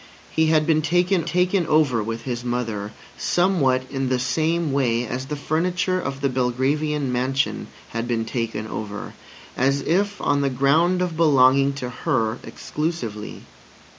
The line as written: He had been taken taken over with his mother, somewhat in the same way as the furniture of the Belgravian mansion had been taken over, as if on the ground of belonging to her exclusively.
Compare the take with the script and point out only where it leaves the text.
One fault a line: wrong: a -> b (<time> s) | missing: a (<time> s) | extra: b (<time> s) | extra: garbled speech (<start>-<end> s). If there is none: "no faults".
no faults